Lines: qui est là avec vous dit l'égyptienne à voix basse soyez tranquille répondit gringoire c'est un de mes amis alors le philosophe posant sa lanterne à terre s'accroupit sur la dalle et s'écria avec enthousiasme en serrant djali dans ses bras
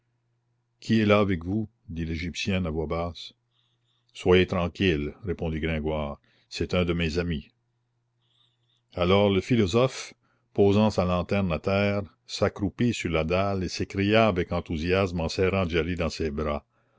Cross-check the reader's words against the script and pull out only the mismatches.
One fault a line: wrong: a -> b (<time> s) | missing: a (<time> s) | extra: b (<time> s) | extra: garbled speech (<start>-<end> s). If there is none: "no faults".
no faults